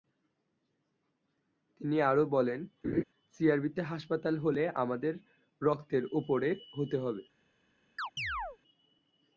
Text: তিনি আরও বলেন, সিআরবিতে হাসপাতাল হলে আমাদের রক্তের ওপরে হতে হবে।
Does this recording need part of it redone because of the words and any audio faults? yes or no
yes